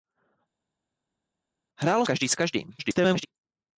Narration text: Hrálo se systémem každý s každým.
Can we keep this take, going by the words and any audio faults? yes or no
no